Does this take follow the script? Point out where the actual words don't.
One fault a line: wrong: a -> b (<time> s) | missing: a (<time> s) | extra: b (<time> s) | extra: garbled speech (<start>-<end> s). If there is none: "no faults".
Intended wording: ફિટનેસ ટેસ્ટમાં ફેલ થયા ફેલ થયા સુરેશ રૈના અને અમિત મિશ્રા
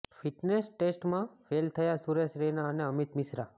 missing: ફેલ થયા (2.0 s)